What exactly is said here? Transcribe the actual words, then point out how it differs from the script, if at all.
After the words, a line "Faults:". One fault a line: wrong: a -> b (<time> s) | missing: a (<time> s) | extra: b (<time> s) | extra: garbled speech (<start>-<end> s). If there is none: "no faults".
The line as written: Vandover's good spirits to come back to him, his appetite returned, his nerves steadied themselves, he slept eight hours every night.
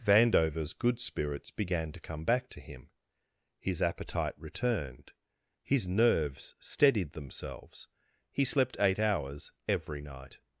Vandover's good spirits began to come back to him, his appetite returned, his nerves steadied themselves, he slept eight hours every night.
Faults:
extra: began (1.5 s)